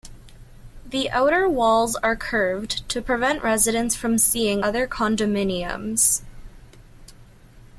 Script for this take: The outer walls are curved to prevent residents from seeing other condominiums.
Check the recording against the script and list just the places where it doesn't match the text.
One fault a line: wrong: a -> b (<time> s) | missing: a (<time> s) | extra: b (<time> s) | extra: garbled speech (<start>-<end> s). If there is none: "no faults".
no faults